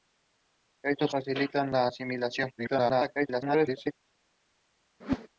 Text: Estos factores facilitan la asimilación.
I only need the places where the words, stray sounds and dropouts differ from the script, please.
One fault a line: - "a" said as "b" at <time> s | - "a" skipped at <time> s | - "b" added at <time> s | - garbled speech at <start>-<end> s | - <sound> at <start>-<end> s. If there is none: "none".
- "factores" skipped at 1.1 s
- garbled speech at 2.6-3.9 s
- whoosh at 5.0-5.3 s